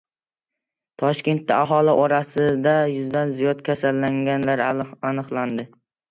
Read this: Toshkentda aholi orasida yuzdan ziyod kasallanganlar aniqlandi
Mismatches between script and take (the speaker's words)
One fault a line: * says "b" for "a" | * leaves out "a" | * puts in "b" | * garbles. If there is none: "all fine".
all fine